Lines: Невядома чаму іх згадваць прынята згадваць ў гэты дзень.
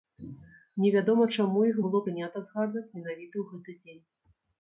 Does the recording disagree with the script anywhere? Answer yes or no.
yes